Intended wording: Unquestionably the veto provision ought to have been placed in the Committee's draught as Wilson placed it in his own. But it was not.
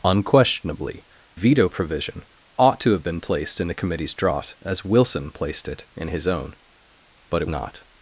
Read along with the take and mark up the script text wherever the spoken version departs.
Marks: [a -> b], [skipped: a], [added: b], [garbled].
Unquestionably [skipped: the] veto provision ought to have been placed in the Committee's draught as Wilson placed it in his own. But it [skipped: was] not.